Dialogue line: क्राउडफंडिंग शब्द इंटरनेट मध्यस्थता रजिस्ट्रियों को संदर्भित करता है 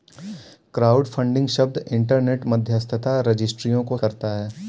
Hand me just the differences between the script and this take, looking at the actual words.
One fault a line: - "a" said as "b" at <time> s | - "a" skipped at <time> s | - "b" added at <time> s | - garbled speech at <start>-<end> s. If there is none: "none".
- "संदर्भित" skipped at 4.0 s